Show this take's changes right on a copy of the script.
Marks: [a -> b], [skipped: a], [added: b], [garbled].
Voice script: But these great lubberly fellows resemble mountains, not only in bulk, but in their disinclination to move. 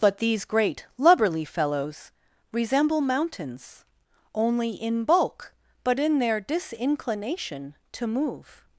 But these great lubberly fellows resemble mountains, [skipped: not] only in bulk, but in their disinclination to move.